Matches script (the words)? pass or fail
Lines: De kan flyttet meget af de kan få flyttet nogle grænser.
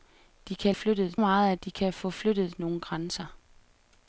pass